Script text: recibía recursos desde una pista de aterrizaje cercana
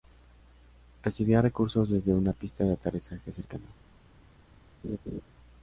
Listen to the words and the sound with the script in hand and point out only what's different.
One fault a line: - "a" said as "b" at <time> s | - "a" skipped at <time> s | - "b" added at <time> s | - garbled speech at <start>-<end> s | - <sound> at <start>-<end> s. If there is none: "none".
- laugh at 4.8-5.2 s